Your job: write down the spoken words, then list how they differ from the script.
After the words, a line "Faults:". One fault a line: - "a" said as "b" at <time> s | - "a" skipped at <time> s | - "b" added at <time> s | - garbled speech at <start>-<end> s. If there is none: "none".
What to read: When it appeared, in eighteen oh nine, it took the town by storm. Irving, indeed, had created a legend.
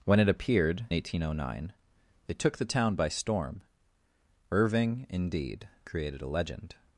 When it appeared, eighteen oh nine, it took the town by storm. Irving, indeed, created a legend.
Faults:
- "in" skipped at 0.9 s
- "had" skipped at 5.7 s